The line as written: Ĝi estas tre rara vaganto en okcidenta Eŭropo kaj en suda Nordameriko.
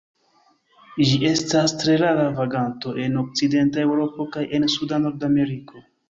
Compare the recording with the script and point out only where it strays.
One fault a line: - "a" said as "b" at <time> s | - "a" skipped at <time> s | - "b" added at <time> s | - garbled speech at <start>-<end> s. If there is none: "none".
none